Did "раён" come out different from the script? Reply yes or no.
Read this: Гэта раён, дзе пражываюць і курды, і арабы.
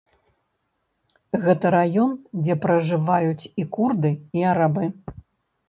no